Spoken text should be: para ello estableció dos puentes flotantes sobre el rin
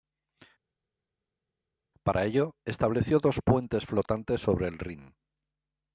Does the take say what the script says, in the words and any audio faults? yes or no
yes